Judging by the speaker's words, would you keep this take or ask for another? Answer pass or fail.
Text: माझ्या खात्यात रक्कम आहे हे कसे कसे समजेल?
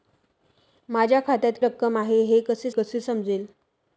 pass